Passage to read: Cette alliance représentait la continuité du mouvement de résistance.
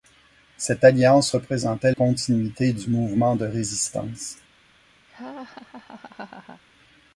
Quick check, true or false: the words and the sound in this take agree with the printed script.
false